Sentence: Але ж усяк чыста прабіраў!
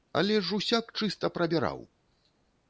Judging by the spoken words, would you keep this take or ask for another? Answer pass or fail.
pass